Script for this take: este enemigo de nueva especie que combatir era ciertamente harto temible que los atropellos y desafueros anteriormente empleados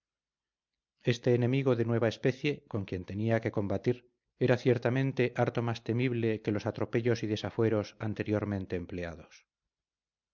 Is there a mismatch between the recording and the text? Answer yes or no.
yes